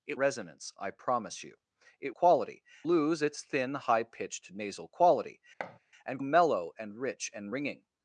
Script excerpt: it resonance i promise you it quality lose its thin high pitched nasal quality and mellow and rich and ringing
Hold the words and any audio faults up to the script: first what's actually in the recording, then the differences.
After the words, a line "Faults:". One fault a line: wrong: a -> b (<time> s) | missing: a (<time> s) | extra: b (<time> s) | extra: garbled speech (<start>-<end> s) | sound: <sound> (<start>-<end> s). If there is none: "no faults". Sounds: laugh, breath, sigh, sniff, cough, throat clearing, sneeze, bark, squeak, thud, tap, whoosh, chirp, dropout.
it resonance i promise you it quality lose its thin high pitched nasal quality and mellow and rich and ringing
Faults:
sound: thud (5.6-5.8 s)